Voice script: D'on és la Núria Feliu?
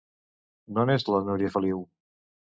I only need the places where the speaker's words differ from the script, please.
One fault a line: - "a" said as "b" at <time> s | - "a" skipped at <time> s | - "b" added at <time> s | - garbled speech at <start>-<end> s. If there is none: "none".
none